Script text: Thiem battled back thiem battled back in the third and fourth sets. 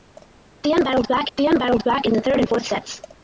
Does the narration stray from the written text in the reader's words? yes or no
no